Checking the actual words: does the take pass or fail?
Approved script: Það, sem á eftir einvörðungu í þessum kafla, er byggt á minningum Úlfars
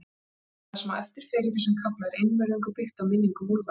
fail